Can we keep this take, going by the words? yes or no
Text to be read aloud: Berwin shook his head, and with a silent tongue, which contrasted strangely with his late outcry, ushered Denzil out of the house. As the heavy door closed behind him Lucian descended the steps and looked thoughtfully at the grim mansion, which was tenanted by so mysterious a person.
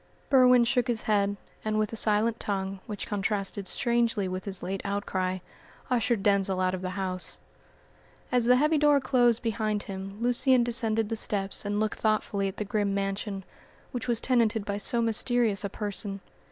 yes